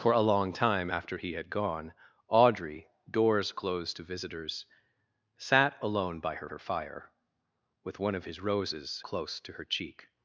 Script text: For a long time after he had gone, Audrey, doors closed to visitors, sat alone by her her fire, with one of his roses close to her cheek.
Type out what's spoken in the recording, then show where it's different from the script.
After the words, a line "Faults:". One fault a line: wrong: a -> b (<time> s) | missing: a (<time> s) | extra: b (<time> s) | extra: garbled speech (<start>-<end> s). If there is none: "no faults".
For a long time after he had gone, Audrey, doors closed to visitors, sat alone by her her fire, with one of his roses close to her cheek.
Faults:
no faults